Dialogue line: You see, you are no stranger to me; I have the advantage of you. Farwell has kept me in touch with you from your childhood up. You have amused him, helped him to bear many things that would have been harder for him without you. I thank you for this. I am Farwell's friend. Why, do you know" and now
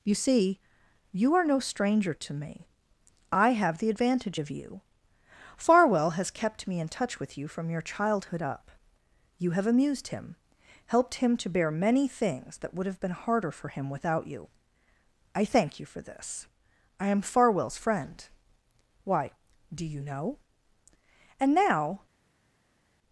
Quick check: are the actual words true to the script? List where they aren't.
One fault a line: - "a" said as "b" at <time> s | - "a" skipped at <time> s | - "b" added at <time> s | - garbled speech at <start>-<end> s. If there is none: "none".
none